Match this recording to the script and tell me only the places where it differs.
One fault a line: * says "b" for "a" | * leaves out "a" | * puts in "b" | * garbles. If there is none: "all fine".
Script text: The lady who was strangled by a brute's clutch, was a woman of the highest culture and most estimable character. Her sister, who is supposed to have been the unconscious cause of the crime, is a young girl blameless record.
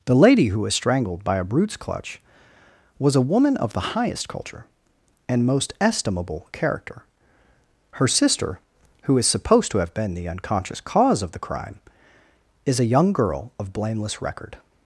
* puts in "of"